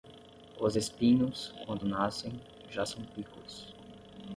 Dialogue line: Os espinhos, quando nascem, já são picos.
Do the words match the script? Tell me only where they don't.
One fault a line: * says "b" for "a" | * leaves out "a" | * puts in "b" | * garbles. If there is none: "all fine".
all fine